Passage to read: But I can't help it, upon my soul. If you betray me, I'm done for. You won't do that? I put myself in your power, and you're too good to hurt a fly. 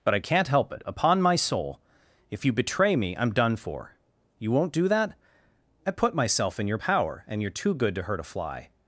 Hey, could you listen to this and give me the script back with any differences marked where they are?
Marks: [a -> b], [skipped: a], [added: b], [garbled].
But I can't help it, upon my soul. If you betray me, I'm done for. You won't do that? I put myself in your power, and you're too good to hurt a fly.